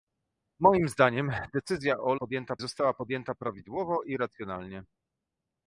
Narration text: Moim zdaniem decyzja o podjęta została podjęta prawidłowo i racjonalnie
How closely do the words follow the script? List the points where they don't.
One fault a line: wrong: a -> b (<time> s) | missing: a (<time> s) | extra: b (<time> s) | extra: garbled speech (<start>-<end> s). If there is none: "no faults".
no faults